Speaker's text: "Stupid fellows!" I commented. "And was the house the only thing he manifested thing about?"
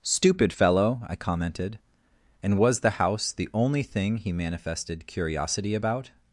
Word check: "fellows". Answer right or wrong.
wrong